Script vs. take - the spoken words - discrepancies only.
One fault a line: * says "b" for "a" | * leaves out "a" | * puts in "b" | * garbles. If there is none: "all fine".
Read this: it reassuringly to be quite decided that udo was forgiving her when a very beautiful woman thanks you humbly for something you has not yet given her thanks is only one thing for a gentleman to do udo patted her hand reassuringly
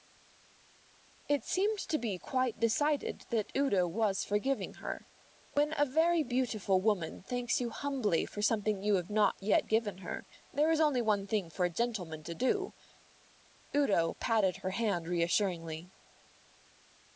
* says "seemed" for "reassuringly"
* says "have" for "has"
* says "there" for "thanks"